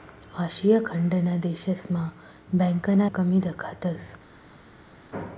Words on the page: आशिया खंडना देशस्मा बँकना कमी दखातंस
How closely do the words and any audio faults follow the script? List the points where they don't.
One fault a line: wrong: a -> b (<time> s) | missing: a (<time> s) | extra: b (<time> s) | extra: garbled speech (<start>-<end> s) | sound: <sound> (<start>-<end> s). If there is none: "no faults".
no faults